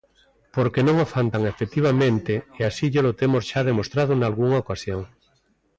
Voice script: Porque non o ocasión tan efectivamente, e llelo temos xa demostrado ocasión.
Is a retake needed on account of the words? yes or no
yes